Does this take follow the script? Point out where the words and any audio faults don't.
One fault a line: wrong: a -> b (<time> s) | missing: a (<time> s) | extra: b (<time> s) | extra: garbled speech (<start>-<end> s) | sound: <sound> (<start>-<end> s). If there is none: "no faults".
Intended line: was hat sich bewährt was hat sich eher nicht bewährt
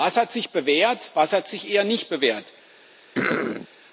sound: throat clearing (3.1-3.7 s)